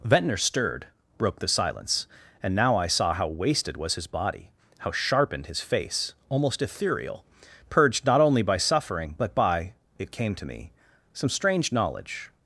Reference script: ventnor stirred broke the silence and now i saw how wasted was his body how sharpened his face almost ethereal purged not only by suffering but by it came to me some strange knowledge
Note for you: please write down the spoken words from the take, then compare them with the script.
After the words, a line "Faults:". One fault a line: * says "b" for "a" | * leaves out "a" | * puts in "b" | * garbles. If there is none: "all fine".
ventnor stirred broke the silence and now i saw how wasted was his body how sharpened his face almost ethereal purged not only by suffering but by it came to me some strange knowledge
Faults:
all fine